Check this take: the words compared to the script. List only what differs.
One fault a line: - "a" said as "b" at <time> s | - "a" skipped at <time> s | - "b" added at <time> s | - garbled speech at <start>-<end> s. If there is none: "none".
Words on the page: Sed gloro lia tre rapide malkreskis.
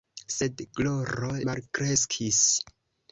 - "lia tre rapide" skipped at 1.3 s